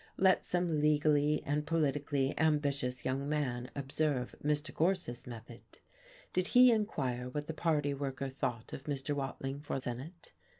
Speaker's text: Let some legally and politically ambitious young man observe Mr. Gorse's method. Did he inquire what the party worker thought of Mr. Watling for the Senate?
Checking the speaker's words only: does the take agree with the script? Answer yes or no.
no